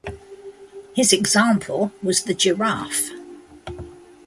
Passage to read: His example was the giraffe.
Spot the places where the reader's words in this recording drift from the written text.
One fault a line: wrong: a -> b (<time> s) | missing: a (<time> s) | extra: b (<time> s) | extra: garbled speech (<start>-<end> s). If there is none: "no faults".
no faults